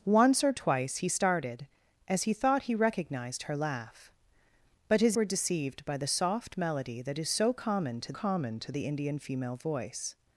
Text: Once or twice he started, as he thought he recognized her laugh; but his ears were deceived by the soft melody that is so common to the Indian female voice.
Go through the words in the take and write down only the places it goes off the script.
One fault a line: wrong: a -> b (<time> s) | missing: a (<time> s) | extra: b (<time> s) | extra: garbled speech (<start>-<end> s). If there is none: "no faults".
missing: ears (5.2 s)
extra: common to (8.1 s)